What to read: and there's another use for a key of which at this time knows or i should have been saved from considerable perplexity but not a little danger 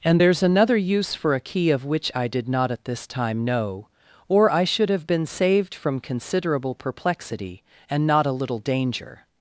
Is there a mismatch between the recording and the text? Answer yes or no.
yes